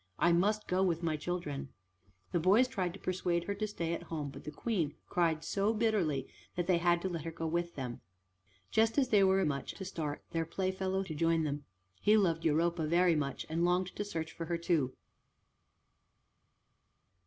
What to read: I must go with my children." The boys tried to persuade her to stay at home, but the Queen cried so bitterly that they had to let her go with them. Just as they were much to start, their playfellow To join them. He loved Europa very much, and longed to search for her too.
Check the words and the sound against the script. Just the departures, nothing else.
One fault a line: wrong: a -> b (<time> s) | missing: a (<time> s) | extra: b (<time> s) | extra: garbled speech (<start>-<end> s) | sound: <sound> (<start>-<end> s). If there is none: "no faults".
no faults